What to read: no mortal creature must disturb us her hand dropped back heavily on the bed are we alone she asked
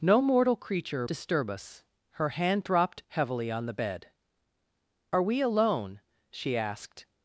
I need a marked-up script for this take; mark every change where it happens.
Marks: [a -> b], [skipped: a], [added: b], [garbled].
no mortal creature [skipped: must] disturb us her hand dropped [skipped: back] heavily on the bed are we alone she asked